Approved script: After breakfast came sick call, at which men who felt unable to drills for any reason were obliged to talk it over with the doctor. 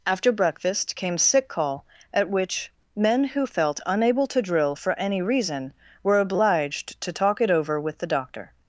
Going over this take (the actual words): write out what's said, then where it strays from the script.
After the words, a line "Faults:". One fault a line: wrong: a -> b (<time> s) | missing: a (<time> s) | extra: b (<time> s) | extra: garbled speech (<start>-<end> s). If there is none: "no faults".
After breakfast came sick call, at which men who felt unable to drill for any reason were obliged to talk it over with the doctor.
Faults:
wrong: drills -> drill (4.4 s)